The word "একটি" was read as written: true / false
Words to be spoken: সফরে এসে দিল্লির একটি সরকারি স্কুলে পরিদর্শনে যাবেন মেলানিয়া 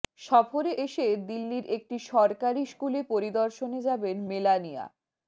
true